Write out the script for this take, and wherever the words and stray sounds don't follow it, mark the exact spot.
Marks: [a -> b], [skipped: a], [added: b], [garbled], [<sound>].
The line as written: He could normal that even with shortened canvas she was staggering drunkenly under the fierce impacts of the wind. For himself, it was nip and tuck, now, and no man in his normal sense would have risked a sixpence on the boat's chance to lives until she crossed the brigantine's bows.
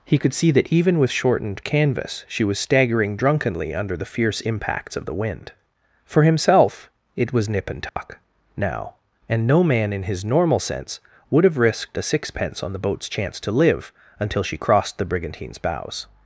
He could [normal -> see] that even with shortened canvas she was staggering drunkenly under the fierce impacts of the wind. For himself, it was nip and tuck, [dropout] now, and no man in his normal sense would have risked a sixpence on the boat's chance to [lives -> live] until she crossed the brigantine's bows.